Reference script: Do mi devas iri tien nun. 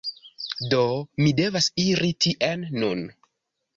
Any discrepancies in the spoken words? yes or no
no